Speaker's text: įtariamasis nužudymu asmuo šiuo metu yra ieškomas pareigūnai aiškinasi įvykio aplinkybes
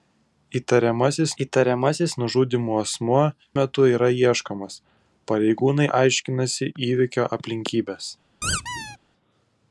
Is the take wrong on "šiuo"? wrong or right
wrong